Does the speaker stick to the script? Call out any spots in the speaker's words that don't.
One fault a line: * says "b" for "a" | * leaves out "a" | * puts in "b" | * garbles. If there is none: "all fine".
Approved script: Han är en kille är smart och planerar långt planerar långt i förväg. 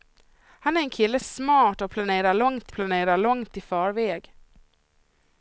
all fine